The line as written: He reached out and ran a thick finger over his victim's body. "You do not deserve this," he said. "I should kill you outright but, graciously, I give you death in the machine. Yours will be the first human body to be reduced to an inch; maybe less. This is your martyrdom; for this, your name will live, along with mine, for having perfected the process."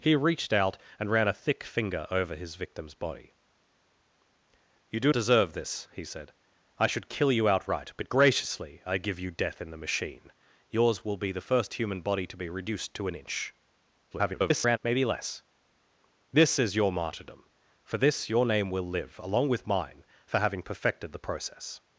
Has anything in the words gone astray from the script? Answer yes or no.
yes